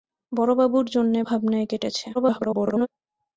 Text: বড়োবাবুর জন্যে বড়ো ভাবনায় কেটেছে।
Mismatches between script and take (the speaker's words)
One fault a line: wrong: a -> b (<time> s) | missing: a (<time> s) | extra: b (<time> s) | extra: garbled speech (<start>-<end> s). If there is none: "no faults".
missing: বড়ো (1.2 s)
extra: garbled speech (2.1-2.9 s)